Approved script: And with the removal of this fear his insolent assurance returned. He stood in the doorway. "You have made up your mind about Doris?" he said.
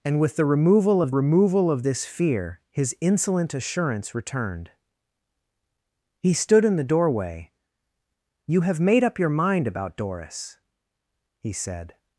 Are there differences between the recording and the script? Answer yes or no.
yes